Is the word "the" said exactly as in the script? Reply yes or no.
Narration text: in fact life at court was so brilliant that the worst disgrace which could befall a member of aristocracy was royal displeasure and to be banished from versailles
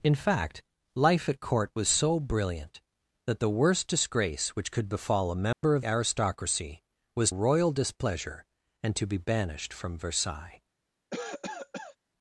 yes